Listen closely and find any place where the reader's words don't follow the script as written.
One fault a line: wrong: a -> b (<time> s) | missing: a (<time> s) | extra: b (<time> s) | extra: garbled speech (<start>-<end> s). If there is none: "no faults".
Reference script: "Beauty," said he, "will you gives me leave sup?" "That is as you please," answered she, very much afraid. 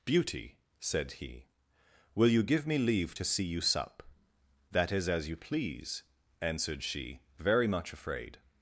wrong: gives -> give (2.4 s)
extra: to see you (3.1 s)